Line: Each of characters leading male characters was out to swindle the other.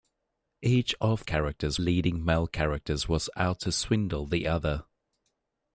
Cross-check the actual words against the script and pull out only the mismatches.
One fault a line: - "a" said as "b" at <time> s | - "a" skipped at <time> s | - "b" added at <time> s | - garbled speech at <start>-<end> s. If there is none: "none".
none